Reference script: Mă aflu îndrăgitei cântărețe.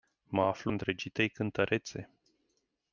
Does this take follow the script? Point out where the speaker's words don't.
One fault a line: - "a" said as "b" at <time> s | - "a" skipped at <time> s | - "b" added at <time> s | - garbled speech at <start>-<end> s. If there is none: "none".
none